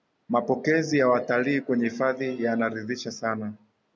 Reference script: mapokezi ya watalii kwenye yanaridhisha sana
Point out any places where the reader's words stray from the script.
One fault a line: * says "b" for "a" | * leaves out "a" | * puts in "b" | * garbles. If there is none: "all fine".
* puts in "hifadhi"